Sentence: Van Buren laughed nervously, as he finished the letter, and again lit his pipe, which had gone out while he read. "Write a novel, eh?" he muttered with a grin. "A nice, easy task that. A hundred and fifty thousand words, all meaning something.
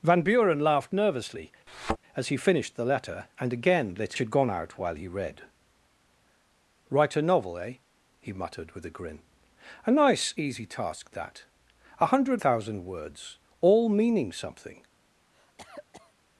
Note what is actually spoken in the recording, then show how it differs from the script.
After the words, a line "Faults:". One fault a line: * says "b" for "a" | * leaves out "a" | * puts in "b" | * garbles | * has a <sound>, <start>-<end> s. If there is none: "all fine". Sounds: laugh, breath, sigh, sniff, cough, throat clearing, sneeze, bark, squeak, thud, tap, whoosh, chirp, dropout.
Van Buren laughed nervously, as he finished the letter, and again lit had gone out while he read. "Write a novel, eh?" he muttered with a grin. "A nice, easy task that. A hundred thousand words, all meaning something.
Faults:
* has a thud, 1.7-2.0 s
* leaves out "his pipe which"
* leaves out "and fifty"
* has a cough, 15.3-16.1 s